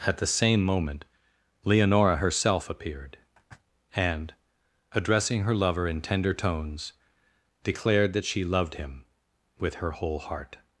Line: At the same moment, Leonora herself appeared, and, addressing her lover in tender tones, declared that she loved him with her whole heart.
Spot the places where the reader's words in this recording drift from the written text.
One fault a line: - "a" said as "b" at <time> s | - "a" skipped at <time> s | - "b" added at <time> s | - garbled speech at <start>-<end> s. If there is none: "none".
none